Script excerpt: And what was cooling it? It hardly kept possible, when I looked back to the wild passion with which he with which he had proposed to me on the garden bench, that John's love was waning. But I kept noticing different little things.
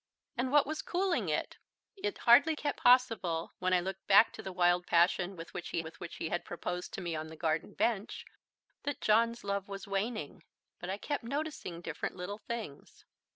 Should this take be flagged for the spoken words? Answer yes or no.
no